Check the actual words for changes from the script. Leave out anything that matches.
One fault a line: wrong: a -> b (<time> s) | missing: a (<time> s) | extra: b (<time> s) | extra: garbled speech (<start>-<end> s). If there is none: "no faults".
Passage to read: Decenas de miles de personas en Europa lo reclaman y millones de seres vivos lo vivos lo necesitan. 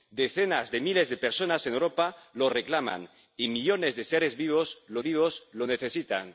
no faults